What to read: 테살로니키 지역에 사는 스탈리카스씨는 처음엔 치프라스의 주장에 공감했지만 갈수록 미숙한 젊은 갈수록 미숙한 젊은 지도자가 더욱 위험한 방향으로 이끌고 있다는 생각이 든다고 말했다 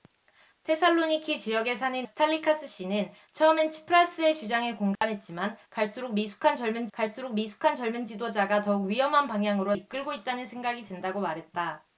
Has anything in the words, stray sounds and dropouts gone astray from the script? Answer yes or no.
yes